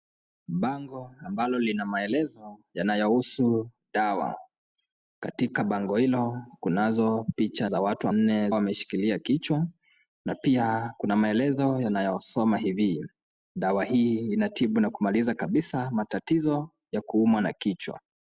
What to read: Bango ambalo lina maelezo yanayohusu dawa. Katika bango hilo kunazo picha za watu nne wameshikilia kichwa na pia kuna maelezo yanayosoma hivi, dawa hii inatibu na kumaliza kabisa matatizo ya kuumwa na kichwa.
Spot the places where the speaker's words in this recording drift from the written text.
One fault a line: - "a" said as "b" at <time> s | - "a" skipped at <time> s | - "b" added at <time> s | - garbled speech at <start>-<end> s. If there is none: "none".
none